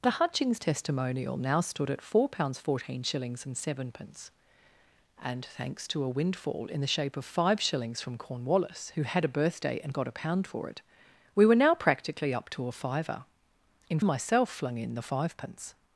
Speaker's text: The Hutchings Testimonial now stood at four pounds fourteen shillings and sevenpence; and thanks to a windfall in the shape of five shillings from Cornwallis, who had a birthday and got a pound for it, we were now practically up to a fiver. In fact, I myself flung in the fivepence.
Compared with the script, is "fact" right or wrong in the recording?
wrong